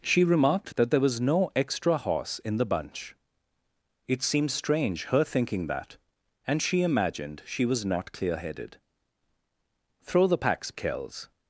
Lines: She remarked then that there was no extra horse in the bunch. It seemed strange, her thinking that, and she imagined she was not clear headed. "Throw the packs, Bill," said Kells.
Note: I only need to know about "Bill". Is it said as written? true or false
false